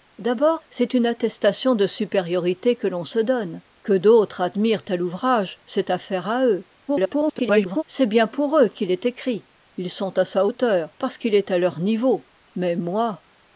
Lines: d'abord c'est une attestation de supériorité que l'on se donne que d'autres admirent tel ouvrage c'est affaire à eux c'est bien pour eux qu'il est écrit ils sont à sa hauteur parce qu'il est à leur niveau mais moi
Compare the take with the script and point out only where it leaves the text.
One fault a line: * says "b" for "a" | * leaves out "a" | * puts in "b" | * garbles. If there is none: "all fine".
* garbles